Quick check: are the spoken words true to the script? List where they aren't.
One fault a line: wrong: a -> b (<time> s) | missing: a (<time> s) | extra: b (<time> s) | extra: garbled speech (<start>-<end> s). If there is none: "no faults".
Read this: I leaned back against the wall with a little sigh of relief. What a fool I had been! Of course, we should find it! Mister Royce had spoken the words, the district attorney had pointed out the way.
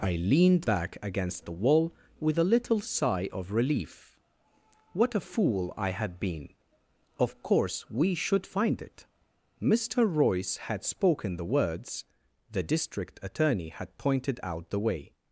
no faults